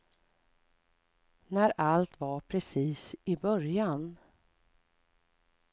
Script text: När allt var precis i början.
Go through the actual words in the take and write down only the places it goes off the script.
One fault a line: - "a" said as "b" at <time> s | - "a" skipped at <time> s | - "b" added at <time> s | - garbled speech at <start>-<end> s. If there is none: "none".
none